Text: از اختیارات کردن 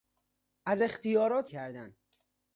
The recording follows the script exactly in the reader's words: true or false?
true